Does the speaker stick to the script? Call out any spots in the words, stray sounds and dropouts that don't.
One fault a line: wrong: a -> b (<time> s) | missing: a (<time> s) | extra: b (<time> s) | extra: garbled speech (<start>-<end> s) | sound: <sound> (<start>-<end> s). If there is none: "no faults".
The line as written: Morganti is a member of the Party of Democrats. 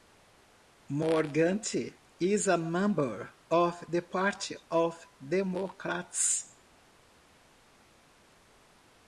no faults